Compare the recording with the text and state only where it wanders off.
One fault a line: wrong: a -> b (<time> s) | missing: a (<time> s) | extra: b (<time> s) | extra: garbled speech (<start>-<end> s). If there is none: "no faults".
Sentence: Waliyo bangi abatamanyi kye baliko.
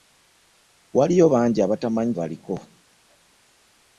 missing: kye (2.1 s)